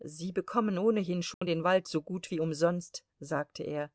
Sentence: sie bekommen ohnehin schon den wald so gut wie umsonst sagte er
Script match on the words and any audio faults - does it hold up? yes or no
no